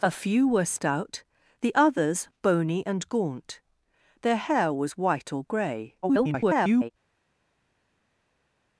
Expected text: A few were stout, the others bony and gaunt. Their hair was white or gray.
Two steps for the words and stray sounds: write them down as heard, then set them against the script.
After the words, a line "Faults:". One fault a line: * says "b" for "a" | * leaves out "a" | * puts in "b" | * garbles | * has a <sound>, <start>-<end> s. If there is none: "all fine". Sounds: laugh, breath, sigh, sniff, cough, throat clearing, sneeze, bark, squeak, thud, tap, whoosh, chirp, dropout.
A few were stout, the others bony and gaunt. Their hair was white or gray. [garbled]
Faults:
* garbles